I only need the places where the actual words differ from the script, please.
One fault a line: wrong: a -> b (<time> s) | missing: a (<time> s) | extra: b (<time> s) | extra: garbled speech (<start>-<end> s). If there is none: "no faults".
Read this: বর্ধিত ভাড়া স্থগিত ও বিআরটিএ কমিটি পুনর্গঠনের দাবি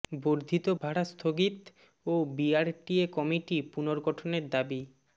no faults